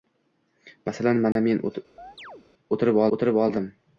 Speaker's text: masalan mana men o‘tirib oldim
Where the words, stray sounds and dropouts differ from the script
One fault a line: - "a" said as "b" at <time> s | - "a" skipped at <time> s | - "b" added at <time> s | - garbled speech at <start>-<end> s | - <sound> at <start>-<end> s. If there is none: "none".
- dropout at 1.3-1.4 s
- chirp at 2.0-2.5 s
- "o‘tirib" added at 3.2 s